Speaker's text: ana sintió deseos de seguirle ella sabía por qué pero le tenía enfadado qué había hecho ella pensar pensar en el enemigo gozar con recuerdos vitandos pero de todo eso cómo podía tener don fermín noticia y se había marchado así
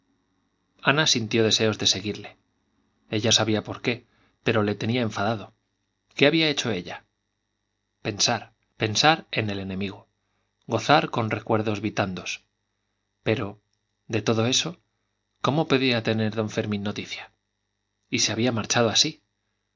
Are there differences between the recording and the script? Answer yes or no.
no